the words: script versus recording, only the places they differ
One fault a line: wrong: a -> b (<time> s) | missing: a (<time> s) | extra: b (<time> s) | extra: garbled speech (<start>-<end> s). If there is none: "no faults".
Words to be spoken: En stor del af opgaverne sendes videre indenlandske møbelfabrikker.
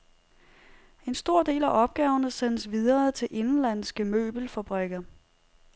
extra: til (3.1 s)